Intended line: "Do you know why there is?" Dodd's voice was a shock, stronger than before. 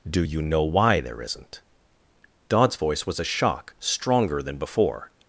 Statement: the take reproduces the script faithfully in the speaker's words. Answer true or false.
false